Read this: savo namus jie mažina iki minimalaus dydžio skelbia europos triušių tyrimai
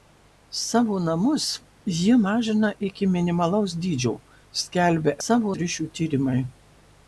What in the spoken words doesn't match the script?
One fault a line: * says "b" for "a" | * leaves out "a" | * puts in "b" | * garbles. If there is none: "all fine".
* says "savo" for "europos"